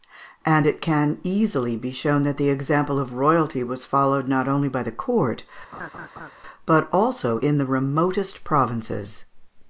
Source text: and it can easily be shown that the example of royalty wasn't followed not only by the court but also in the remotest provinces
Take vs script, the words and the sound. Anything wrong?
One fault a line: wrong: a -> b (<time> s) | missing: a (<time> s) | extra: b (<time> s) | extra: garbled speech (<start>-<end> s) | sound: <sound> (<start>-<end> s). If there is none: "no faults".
wrong: wasn't -> was (3.6 s)
sound: laugh (5.7-6.3 s)